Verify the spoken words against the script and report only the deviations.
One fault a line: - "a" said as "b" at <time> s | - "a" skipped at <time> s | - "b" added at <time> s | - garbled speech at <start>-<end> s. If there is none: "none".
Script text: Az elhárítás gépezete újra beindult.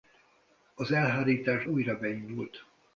- "gépezete" skipped at 1.6 s